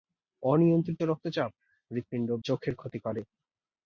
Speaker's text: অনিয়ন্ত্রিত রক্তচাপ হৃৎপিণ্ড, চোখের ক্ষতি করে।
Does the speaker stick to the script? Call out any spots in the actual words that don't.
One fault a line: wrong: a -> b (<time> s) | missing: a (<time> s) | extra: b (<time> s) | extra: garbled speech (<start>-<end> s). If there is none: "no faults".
no faults